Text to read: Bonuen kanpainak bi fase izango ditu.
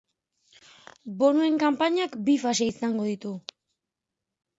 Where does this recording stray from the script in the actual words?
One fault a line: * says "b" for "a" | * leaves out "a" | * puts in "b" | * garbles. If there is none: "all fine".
all fine